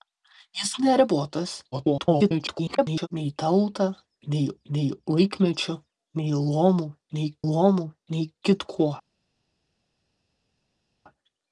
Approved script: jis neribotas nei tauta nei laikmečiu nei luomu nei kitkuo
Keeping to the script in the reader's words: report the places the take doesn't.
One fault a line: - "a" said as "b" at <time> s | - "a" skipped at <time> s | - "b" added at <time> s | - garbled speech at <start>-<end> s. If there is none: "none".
- garbled speech at 1.7-3.1 s
- "nei" added at 4.7 s
- "luomu nei" added at 7.5 s